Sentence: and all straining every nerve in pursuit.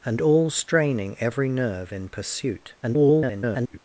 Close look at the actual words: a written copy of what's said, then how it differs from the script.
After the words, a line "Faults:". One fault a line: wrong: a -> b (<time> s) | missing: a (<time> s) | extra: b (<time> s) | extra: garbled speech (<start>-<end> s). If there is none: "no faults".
and all straining every nerve in pursuit. [garbled]
Faults:
extra: garbled speech (2.8-3.8 s)